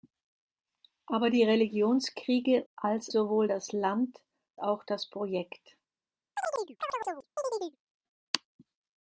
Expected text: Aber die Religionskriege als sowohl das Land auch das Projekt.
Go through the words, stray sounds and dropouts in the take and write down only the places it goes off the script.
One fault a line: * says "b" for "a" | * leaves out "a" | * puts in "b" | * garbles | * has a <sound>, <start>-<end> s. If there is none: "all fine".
* has a chirp, 6.4-7.8 s